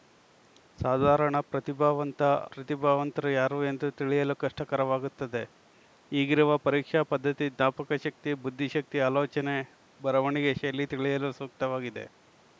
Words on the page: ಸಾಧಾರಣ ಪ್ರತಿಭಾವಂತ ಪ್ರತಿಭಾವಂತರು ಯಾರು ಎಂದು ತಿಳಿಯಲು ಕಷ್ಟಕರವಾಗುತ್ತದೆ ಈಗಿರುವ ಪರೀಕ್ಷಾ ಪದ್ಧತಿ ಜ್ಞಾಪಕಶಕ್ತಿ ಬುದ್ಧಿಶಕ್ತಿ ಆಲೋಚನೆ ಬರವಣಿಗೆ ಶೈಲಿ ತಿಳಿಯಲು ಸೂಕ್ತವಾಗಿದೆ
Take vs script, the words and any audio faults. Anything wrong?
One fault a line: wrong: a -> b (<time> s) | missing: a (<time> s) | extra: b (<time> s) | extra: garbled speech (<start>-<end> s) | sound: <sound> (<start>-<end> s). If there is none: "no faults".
no faults